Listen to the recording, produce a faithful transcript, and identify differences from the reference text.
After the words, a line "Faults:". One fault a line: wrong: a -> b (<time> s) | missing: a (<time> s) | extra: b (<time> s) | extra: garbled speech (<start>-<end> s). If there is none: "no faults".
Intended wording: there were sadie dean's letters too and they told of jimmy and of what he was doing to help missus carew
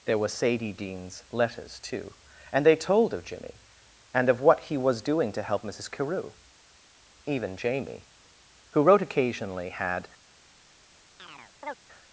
there were sadie dean's letters too and they told of jimmy and of what he was doing to help missus carew even jamie who wrote occasionally had
Faults:
extra: even jamie who wrote occasionally had (7.3 s)